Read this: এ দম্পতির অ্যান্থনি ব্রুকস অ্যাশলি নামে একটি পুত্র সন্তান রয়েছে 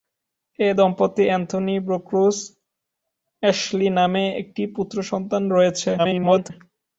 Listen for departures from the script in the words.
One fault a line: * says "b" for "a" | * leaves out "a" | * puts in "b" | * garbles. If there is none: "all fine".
* garbles